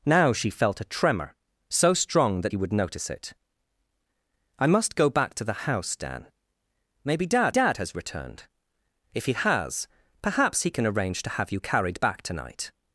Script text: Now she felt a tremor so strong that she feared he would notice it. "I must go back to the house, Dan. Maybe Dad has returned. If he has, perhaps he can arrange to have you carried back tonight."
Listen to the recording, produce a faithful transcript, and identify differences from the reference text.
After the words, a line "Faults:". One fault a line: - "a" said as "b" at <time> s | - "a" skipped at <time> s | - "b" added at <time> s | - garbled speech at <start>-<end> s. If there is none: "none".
Now she felt a tremor so strong that he would notice it. "I must go back to the house, Dan. Maybe Dad Dad has returned. If he has, perhaps he can arrange to have you carried back tonight."
Faults:
- "she feared" skipped at 2.5 s
- "Dad" added at 7.5 s